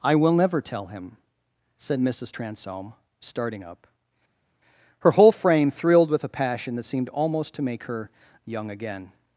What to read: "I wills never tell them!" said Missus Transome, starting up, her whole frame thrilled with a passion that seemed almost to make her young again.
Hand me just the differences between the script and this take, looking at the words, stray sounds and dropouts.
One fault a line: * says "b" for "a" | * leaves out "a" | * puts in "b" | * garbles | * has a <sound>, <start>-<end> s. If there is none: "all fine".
* says "will" for "wills"
* says "him" for "them"